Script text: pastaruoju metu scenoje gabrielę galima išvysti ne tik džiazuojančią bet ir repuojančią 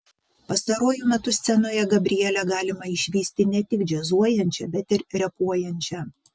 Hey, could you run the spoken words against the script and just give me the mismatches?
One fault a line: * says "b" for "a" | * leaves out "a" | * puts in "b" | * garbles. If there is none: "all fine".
all fine